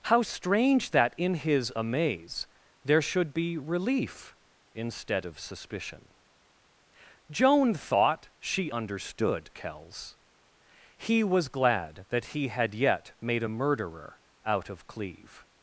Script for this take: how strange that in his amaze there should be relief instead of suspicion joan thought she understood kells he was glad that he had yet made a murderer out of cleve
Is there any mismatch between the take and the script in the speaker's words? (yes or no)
no